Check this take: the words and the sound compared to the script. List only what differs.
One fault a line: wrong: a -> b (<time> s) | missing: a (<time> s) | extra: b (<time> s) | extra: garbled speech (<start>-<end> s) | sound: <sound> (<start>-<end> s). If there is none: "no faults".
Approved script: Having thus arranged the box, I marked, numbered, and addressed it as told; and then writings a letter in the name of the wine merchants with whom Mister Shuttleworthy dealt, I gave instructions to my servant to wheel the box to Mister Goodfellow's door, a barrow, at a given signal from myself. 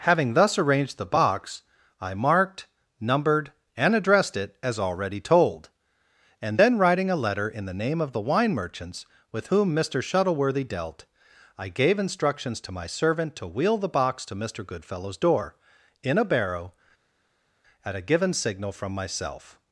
extra: already (4.8 s)
wrong: writings -> writing (6.8 s)
extra: in (16.0 s)